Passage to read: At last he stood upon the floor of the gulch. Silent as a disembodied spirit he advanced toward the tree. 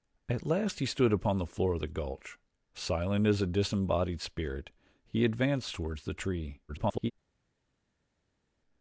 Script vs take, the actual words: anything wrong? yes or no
yes